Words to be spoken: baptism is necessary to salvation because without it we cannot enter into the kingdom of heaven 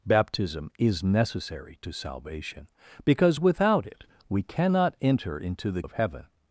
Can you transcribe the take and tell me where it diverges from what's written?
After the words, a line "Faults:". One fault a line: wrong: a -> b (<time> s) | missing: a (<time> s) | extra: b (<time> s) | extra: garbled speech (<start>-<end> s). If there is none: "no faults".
baptism is necessary to salvation because without it we cannot enter into the of heaven
Faults:
missing: kingdom (5.8 s)